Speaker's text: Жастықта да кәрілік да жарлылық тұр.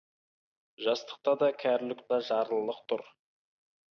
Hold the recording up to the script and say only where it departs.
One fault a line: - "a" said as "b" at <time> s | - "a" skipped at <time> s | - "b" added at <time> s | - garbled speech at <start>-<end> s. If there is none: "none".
none